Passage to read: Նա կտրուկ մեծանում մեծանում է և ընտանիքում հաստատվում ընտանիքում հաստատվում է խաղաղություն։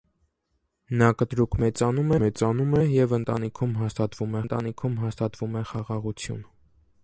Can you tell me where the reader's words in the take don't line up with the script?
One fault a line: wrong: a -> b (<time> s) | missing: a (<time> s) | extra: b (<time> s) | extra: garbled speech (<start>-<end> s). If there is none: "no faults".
no faults